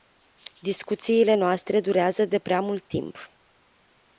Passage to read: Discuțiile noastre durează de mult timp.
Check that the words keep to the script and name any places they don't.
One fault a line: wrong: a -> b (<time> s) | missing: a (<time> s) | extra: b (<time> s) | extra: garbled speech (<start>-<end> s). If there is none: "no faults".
extra: prea (2.4 s)